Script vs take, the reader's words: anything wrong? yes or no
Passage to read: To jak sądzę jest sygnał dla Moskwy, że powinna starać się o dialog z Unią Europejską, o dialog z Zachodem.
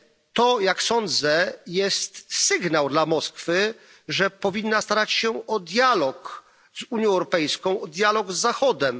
no